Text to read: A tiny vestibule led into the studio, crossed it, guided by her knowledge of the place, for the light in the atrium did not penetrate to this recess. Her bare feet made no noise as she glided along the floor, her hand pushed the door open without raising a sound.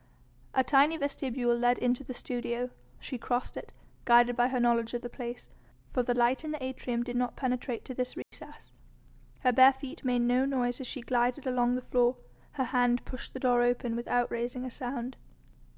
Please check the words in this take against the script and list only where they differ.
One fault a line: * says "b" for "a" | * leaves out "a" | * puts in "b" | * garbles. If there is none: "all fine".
* puts in "she"